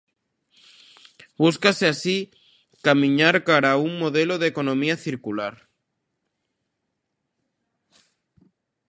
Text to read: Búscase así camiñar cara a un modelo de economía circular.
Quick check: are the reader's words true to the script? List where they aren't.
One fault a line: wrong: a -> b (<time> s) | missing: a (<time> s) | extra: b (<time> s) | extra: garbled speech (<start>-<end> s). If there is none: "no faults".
no faults